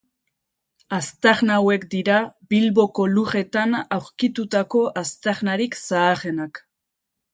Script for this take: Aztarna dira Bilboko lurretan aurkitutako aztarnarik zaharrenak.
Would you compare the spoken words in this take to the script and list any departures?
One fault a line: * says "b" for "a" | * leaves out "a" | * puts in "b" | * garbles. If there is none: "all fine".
* puts in "hauek"